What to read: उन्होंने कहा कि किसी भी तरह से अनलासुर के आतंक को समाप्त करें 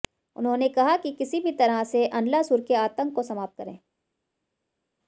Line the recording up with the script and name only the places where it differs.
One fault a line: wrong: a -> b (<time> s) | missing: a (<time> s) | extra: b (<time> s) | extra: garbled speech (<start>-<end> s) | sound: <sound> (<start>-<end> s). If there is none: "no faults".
no faults